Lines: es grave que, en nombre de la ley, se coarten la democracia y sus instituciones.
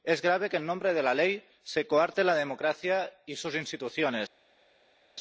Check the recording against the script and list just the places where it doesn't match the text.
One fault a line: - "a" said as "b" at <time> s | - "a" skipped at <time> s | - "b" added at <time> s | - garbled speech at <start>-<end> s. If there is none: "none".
none